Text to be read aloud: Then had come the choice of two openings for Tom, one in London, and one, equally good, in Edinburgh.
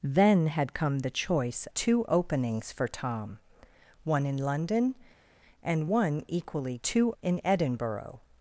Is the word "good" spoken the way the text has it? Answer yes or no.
no